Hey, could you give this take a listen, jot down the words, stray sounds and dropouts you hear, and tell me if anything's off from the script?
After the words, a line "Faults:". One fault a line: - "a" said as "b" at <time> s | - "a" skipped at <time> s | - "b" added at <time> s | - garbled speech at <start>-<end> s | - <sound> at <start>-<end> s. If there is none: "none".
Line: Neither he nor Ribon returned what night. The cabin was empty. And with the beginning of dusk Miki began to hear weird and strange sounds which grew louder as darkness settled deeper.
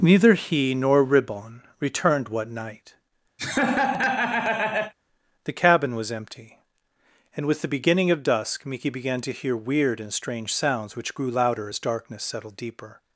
Neither he nor Ribon returned what night. The cabin was empty. And with the beginning of dusk Miki began to hear weird and strange sounds which grew louder as darkness settled deeper.
Faults:
- laugh at 3.4-4.9 s